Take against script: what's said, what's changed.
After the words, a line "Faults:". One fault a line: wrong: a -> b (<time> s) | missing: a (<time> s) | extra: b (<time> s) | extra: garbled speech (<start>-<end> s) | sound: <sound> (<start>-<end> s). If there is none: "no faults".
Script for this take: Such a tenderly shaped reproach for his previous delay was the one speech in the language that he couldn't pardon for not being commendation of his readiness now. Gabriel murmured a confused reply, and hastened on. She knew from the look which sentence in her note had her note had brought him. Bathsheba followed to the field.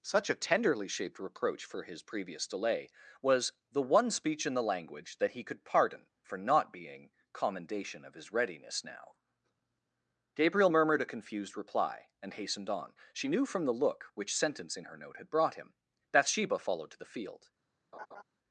Such a tenderly shaped reproach for his previous delay was the one speech in the language that he could pardon for not being commendation of his readiness now. Gabriel murmured a confused reply, and hastened on. She knew from the look which sentence in her note had brought him. Bathsheba followed to the field.
Faults:
wrong: couldn't -> could (5.4 s)
missing: her note had (15.3 s)
sound: laugh (17.9-18.2 s)